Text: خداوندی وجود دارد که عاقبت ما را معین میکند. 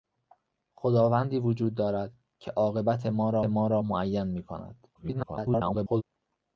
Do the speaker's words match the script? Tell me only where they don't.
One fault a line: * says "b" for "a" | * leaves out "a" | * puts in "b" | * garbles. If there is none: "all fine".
* puts in "ما را"
* garbles